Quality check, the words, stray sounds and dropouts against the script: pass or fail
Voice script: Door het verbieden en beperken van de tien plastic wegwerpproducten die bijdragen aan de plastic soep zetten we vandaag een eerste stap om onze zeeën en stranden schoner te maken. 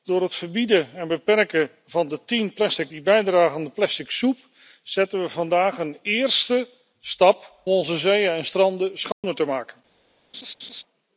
fail